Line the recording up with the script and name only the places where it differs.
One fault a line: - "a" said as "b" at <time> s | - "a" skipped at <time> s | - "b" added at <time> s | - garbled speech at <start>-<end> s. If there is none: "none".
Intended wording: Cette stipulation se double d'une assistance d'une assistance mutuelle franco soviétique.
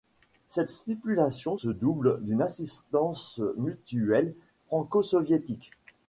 - "d'une assistance" skipped at 3.4 s